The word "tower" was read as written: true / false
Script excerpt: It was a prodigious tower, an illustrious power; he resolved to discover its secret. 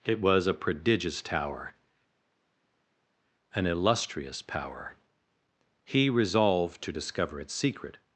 true